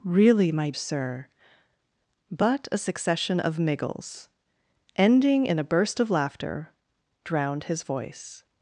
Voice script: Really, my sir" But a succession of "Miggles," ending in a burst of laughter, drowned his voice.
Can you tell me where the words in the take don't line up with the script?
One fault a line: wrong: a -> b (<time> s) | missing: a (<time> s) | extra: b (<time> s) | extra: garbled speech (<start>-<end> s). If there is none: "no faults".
no faults